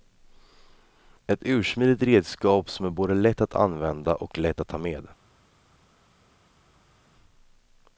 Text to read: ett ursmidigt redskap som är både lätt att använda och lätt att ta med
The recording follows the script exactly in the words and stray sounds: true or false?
true